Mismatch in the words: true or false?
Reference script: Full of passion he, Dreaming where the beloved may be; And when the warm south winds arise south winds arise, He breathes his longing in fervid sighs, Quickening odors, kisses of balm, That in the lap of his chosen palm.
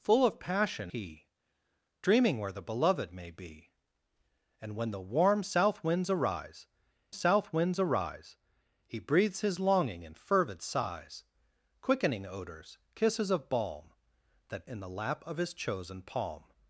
false